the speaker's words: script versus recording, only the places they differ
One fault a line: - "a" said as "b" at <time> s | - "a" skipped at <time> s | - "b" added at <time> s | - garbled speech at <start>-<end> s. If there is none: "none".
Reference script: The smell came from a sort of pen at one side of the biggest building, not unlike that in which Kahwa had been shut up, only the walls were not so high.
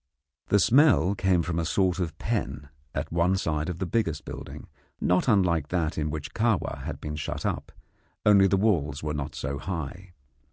none